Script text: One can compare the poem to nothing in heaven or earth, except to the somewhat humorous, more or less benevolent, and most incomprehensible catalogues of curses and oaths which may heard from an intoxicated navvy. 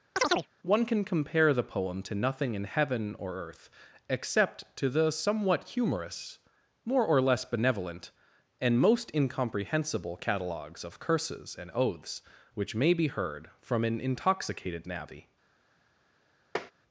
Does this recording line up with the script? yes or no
no